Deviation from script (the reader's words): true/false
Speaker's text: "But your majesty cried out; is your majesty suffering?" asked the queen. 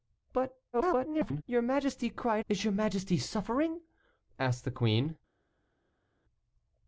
true